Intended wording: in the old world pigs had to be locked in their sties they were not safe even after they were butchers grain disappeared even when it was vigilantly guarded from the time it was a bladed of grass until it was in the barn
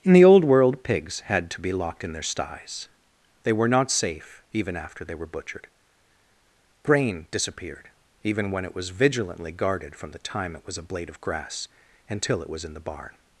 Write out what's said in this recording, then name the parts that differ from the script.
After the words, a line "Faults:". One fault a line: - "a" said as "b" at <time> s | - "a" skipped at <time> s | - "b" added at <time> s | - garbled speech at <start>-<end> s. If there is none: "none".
in the old world pigs had to be locked in their sties they were not safe even after they were butchered grain disappeared even when it was vigilantly guarded from the time it was a blade of grass until it was in the barn
Faults:
- "butchers" said as "butchered" at 5.3 s
- "bladed" said as "blade" at 10.8 s